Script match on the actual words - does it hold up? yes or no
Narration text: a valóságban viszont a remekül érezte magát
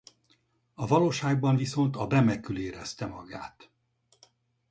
yes